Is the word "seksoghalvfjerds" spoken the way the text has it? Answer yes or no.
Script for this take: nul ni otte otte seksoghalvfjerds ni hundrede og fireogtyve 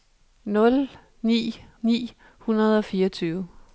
no